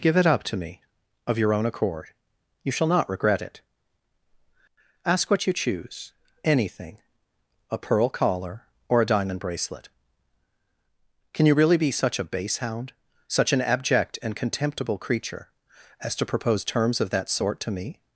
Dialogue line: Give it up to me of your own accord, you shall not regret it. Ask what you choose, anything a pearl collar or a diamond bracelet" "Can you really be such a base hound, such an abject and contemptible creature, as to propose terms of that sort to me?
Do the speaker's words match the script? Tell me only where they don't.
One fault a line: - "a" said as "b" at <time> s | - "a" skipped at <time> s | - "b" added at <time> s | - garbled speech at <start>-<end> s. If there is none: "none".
none